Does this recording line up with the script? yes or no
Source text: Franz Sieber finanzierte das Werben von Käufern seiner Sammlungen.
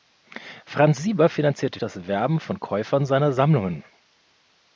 yes